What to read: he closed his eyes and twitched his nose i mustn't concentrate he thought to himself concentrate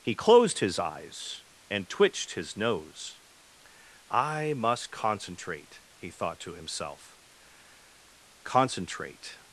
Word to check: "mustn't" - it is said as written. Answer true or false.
false